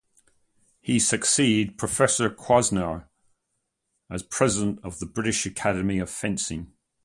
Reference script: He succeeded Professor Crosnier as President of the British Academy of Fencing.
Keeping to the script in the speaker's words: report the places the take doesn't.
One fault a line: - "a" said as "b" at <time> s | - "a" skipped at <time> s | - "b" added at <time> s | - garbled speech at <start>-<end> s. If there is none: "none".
none